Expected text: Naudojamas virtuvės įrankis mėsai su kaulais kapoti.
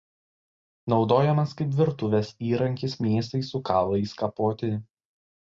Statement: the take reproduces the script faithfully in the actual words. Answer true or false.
false